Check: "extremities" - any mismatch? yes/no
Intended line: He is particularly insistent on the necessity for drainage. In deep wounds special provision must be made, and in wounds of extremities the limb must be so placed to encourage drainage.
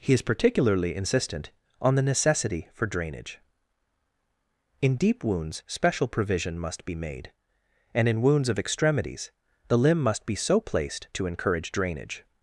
no